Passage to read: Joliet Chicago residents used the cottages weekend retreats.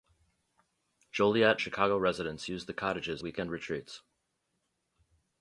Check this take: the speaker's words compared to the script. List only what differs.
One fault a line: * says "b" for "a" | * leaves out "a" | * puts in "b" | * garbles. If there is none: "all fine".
all fine